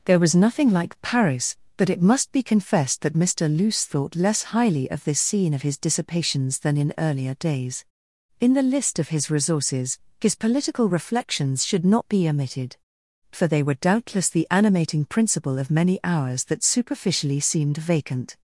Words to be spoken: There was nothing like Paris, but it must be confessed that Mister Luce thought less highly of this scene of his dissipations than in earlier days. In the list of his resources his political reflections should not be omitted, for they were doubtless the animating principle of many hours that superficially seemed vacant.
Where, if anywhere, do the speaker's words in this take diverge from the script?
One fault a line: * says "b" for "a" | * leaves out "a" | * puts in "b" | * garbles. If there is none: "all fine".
all fine